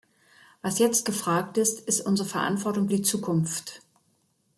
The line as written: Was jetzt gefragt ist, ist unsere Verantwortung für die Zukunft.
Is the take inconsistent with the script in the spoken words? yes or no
yes